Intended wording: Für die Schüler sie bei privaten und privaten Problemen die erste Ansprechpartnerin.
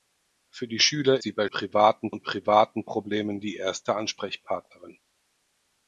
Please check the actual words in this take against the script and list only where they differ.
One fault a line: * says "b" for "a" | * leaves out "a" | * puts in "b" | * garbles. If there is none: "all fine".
all fine